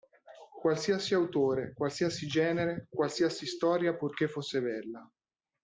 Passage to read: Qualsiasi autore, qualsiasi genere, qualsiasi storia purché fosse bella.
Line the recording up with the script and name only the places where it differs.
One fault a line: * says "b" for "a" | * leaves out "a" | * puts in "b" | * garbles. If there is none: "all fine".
all fine